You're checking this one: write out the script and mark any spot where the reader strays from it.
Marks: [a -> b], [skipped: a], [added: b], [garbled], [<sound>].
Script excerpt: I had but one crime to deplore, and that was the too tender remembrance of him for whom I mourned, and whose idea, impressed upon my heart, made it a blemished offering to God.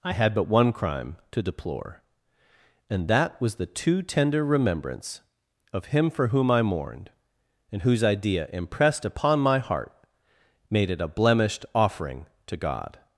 I had but one crime to deplore, and that was the too tender remembrance of him for whom I mourned, and whose idea, impressed upon my heart, made it a blemished offering to God.